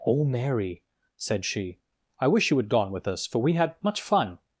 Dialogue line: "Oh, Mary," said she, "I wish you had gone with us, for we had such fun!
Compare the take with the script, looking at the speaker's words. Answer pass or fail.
fail